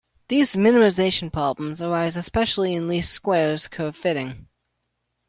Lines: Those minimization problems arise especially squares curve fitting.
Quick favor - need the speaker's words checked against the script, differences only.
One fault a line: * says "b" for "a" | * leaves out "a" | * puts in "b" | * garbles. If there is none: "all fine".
* says "These" for "Those"
* puts in "in least"